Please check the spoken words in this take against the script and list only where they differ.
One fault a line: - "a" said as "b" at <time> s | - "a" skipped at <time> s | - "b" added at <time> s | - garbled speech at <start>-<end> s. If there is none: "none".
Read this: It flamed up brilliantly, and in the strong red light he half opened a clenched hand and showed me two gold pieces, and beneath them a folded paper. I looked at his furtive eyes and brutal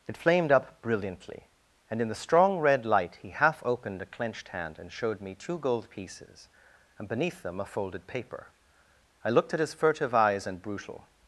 none